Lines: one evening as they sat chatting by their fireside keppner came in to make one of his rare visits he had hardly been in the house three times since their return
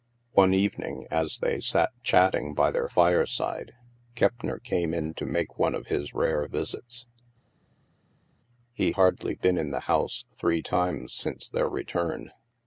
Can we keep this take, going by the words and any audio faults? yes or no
no